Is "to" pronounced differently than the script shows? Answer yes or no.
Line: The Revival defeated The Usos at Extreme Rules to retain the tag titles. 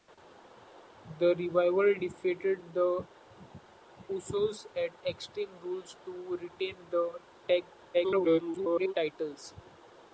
no